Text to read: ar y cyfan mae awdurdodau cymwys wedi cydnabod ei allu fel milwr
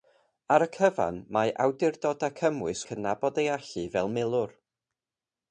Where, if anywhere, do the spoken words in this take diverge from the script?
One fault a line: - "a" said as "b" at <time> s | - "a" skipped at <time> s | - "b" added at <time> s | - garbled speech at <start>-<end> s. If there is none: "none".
- "wedi" skipped at 2.8 s